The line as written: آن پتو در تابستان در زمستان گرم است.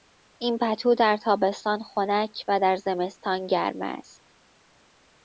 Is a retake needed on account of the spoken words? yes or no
yes